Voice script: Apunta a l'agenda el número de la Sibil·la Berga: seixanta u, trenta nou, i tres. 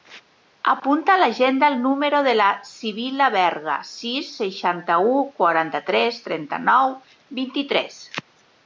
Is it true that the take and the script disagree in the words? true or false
true